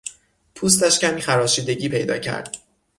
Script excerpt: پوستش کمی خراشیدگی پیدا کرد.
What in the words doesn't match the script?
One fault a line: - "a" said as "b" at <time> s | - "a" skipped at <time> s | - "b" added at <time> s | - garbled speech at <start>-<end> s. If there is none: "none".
none